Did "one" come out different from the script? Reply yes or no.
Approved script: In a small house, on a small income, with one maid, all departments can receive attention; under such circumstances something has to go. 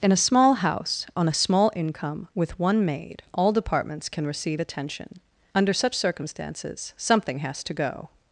no